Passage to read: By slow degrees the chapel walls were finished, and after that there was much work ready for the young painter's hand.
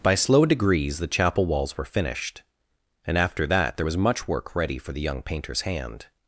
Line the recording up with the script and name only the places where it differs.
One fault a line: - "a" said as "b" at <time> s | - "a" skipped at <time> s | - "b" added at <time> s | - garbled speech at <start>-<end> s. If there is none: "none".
none